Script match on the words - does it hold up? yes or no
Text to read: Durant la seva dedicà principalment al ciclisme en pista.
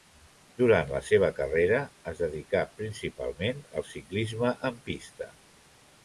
no